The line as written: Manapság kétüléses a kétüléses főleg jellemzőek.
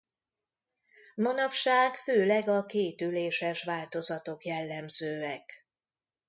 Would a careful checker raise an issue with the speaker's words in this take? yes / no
yes